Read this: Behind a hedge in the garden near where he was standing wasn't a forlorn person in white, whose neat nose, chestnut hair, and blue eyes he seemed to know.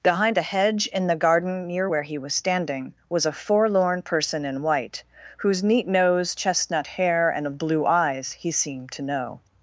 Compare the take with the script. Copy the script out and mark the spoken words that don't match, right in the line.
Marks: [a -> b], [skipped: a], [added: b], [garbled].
Behind a hedge in the garden near where he was standing [wasn't -> was] a forlorn person in white, whose neat nose, chestnut hair, and blue eyes he seemed to know.